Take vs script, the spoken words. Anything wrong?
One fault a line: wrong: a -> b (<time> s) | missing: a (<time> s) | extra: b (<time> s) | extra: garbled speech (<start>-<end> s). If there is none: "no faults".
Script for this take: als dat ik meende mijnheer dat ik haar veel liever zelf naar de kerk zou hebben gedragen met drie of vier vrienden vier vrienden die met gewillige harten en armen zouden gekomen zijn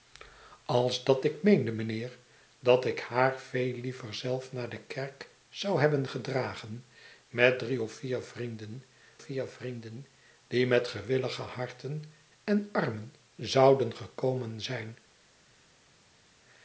no faults